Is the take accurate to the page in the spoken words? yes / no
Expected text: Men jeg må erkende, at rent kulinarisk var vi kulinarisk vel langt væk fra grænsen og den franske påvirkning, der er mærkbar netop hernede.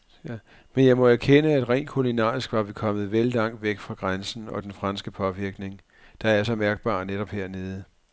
no